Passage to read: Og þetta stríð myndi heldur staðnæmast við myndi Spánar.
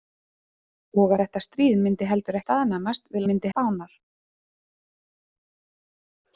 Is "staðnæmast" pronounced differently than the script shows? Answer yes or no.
no